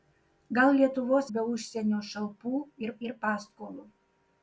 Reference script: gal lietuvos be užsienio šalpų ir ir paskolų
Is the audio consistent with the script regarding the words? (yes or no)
yes